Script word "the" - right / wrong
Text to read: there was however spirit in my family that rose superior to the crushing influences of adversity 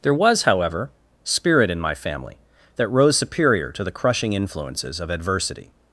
right